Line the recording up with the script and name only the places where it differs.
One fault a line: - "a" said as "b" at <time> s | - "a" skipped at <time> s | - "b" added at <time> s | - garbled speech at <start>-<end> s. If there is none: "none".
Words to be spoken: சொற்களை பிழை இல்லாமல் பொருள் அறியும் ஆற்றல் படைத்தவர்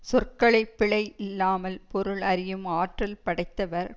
none